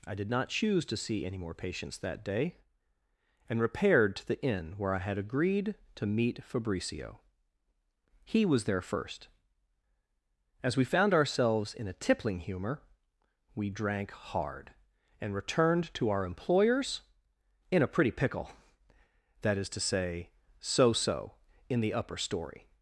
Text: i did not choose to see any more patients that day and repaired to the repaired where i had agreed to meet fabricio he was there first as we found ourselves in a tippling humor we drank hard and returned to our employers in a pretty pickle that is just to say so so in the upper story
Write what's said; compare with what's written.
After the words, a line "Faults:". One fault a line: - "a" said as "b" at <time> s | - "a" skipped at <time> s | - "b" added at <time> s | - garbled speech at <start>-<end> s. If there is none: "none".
i did not choose to see any more patients that day and repaired to the inn where i had agreed to meet fabricio he was there first as we found ourselves in a tippling humor we drank hard and returned to our employers in a pretty pickle that is to say so so in the upper story
Faults:
- "repaired" said as "inn" at 4.4 s
- "just" skipped at 19.7 s